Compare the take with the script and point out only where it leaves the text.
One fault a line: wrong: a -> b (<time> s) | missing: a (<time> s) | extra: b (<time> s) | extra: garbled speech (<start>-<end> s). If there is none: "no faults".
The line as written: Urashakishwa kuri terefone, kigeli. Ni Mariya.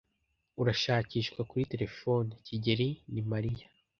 no faults